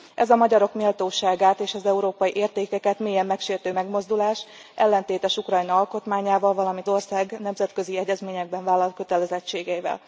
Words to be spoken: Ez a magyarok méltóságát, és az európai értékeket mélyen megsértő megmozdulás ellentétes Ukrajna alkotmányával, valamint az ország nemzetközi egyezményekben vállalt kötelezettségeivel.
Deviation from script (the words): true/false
true